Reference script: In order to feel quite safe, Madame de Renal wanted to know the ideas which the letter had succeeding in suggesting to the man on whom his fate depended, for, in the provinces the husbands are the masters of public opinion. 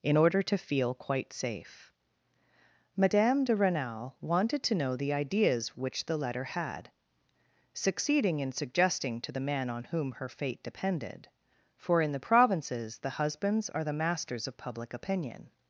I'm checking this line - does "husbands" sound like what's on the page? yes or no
yes